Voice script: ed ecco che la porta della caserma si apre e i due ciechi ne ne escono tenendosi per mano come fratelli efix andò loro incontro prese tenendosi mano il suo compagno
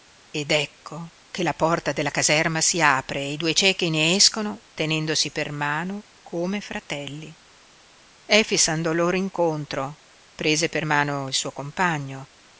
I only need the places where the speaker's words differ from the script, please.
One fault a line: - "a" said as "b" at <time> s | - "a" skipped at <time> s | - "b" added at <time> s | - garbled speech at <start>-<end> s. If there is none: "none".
- "ne" skipped at 4.1 s
- "tenendosi" said as "per" at 10.7 s